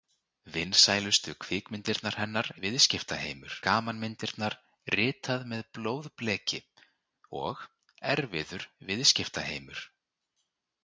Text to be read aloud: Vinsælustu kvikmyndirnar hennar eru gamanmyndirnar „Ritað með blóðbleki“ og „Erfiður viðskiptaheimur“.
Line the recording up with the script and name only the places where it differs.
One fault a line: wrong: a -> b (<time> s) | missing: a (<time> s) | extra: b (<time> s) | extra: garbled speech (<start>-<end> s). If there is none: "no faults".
wrong: eru -> viðskiptaheimur (2.6 s)